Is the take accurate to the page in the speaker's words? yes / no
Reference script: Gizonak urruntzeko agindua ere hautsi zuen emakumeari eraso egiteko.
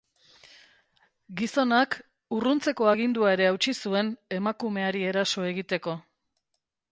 yes